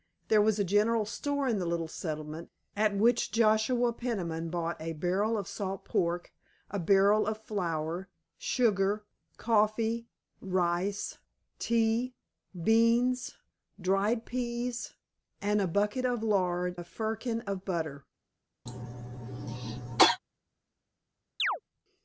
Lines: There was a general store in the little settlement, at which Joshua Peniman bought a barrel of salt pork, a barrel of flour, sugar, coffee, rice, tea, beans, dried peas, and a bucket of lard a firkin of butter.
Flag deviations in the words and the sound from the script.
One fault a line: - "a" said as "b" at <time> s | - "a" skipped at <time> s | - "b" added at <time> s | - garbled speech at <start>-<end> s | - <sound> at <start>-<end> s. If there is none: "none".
- cough at 18.7-20.2 s
- chirp at 21.4-21.6 s